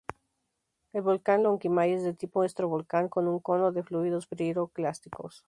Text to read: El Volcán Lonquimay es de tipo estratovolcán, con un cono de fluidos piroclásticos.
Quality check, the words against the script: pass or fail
pass